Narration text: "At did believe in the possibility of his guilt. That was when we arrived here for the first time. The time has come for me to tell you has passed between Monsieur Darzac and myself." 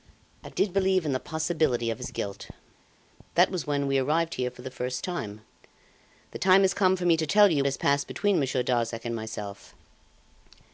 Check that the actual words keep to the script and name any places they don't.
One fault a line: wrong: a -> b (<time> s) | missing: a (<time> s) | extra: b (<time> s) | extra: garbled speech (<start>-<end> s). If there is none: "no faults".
no faults